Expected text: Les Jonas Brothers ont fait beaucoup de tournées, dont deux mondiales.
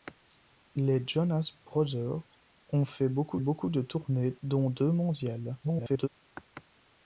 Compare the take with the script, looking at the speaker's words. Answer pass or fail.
fail